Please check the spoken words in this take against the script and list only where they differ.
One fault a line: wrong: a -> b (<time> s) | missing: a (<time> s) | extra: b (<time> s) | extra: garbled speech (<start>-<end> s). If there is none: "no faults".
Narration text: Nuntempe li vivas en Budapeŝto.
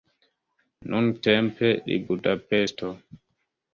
missing: vivas en (2.0 s)